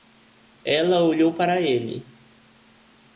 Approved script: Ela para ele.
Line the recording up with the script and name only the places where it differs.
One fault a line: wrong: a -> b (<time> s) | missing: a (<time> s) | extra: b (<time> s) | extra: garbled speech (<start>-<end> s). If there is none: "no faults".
extra: olhou (1.0 s)